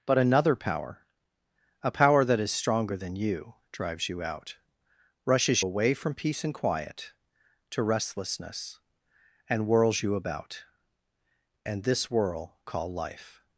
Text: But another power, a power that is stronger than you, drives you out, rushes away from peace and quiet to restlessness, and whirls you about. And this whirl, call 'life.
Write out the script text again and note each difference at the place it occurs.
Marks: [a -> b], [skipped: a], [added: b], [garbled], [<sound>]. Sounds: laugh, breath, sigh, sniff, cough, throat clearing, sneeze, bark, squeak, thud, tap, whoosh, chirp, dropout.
But another power, a power that is stronger than you, drives you out, rushes away from peace and quiet to restlessness, and whirls you about. And this whirl, call 'life.